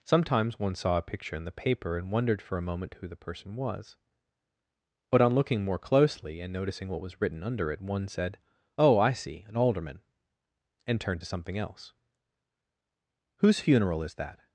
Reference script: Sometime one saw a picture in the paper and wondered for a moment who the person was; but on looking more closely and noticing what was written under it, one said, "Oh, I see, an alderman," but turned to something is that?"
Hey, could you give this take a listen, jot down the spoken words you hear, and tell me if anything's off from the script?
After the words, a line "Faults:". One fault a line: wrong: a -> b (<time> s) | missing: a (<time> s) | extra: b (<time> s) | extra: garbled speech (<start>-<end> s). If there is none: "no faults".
Sometimes one saw a picture in the paper and wondered for a moment who the person was; but on looking more closely and noticing what was written under it, one said, "Oh, I see, an alderman," and turned to something else. "Whose funeral is that?"
Faults:
wrong: Sometime -> Sometimes (0.0 s)
wrong: but -> and (10.9 s)
extra: else Whose funeral (11.6 s)